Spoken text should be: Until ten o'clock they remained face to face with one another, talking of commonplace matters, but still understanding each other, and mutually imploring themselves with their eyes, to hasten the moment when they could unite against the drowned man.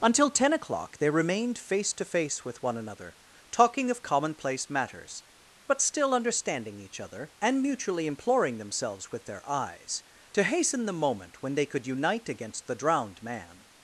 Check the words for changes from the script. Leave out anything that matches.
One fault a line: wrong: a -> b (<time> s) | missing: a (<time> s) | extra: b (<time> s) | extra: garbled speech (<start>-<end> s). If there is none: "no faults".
no faults